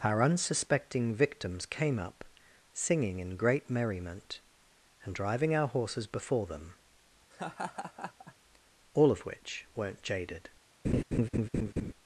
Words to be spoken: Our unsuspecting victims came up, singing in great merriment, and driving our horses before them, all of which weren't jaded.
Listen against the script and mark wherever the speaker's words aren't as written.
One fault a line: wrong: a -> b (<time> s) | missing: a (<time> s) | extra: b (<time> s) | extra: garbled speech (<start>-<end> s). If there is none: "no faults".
no faults